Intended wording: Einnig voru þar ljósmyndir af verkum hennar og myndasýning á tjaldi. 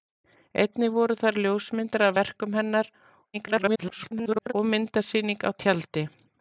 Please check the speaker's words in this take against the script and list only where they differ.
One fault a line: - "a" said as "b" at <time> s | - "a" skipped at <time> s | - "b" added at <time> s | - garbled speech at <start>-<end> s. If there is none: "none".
- garbled speech at 3.3-4.5 s